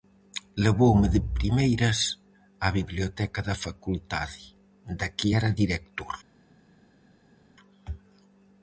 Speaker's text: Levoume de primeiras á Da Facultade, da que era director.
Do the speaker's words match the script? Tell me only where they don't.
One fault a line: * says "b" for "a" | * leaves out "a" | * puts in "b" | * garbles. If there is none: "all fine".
* puts in "Biblioteca"